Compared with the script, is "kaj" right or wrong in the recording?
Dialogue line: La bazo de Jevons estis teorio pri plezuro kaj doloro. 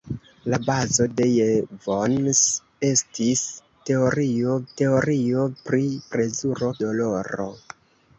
wrong